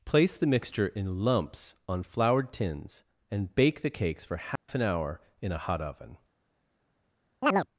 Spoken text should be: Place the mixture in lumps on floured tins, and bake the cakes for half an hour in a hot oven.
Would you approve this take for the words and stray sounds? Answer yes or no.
no